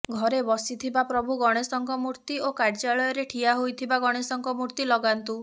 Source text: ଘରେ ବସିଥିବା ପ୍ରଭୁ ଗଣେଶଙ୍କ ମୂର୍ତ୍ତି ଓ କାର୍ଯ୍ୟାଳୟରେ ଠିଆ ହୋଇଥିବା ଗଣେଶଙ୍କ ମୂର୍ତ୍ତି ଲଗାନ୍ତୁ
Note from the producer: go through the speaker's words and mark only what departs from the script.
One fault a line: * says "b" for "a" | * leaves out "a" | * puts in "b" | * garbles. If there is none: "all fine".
all fine